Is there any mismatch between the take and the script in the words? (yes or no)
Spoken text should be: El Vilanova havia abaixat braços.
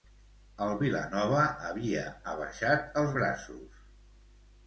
yes